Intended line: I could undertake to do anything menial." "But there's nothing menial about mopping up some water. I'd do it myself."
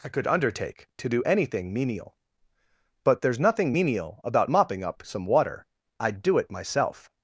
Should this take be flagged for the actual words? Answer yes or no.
no